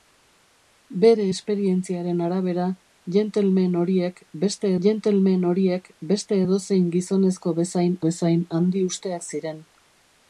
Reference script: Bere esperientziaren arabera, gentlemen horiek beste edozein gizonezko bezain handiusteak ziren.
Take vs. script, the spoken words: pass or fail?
fail